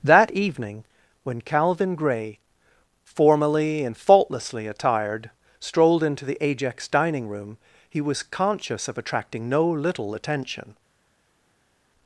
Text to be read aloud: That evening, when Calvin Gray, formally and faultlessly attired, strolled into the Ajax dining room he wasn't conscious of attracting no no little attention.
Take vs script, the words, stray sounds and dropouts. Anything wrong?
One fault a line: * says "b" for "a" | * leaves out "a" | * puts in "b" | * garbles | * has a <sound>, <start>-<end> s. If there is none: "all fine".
* says "was" for "wasn't"
* leaves out "no"